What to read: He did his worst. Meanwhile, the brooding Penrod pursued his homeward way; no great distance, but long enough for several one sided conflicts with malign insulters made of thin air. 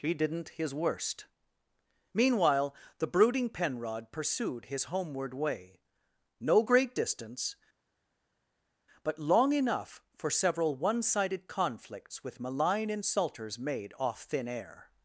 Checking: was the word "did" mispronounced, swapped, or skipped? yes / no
yes